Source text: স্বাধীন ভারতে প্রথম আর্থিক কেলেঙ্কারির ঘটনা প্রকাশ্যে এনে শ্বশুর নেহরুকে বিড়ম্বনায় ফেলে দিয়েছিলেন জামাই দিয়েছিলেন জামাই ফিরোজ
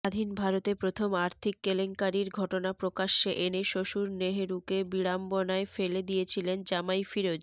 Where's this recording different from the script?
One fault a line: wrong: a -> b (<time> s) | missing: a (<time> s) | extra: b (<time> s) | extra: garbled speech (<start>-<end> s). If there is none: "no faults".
missing: দিয়েছিলেন জামাই (7.0 s)